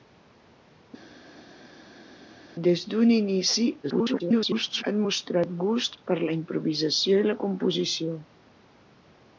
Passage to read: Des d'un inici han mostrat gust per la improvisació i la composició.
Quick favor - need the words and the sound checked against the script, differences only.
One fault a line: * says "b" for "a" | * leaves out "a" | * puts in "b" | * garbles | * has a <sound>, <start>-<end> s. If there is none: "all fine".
* garbles